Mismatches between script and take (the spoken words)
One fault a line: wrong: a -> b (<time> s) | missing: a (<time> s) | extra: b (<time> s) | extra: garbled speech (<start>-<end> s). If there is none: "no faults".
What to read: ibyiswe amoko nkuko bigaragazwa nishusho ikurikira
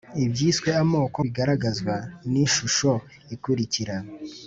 missing: nkuko (1.2 s)